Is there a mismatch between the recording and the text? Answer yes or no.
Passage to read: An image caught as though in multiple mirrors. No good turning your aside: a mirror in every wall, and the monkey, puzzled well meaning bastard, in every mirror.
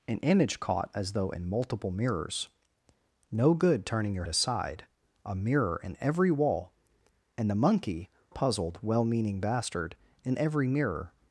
no